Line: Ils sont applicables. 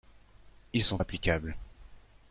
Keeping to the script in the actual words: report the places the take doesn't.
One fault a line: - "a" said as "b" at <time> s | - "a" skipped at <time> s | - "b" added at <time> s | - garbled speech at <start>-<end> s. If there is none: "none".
none